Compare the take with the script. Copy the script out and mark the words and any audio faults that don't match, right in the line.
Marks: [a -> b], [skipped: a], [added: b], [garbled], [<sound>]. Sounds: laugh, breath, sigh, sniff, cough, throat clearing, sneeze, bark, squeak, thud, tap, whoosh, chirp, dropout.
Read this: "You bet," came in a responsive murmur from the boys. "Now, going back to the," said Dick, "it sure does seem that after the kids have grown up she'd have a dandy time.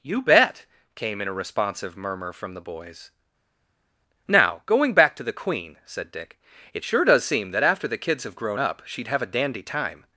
"You bet," came in a responsive murmur from the boys. "Now, going back to the," [added: queen] said Dick, "it sure does seem that after the kids have grown up she'd have a dandy time.